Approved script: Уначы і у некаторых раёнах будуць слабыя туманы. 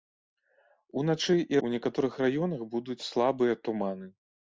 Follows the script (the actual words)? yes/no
yes